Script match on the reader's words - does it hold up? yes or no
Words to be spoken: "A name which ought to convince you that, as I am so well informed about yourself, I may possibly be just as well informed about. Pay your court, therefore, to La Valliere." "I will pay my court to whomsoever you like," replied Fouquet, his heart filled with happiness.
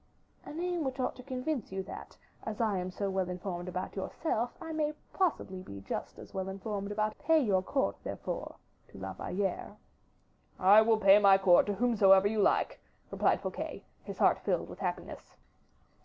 yes